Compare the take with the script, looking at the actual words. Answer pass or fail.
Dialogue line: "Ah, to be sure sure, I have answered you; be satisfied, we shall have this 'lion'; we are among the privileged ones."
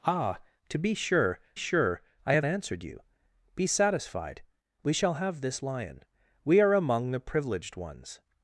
pass